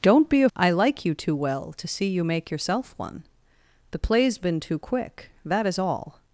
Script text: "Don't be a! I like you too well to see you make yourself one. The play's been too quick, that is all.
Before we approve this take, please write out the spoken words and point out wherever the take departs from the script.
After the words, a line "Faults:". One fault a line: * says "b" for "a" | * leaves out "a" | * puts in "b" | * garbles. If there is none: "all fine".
"Don't be a! I like you too well to see you make yourself one. The play's been too quick, that is all.
Faults:
all fine